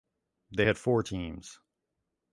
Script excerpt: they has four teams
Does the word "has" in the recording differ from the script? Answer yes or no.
yes